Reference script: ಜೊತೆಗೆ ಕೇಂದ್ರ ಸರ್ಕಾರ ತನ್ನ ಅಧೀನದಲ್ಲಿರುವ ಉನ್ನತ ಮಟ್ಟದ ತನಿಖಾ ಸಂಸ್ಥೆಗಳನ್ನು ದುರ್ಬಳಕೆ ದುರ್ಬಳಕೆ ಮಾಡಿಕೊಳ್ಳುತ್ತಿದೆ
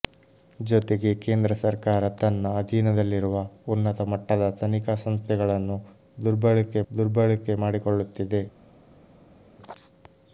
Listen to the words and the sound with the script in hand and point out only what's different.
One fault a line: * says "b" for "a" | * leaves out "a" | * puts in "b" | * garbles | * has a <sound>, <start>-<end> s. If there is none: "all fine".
all fine